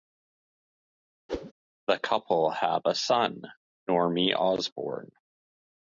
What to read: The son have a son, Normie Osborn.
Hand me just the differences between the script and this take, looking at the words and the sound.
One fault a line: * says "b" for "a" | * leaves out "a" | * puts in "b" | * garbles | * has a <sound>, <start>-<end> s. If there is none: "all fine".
* has a whoosh, 1.3-1.5 s
* says "couple" for "son"